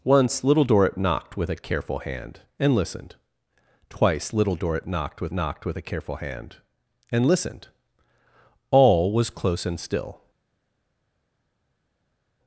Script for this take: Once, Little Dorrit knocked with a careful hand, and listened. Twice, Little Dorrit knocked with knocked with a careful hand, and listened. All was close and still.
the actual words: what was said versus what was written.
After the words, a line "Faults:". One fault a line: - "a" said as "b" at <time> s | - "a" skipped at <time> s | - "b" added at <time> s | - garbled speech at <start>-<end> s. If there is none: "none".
Once, Little Dorrit knocked with a careful hand, and listened. Twice, Little Dorrit knocked with knocked with a careful hand, and listened. All was close and still.
Faults:
none